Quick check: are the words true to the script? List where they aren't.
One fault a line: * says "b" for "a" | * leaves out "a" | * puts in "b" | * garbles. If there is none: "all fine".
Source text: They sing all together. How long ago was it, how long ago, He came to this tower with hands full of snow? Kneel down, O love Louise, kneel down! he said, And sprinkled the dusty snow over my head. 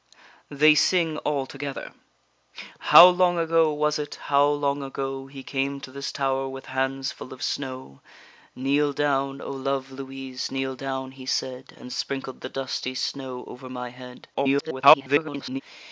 * garbles